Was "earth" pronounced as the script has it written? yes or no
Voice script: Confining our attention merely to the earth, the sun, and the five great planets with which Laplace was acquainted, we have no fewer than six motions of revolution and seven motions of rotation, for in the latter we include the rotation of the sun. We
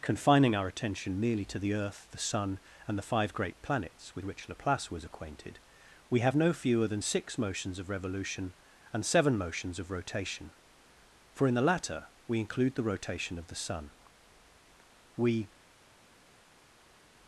yes